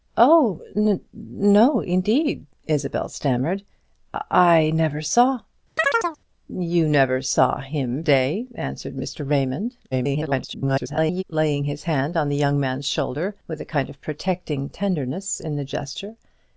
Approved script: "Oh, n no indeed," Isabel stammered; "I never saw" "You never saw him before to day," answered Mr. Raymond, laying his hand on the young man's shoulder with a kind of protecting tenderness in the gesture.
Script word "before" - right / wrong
wrong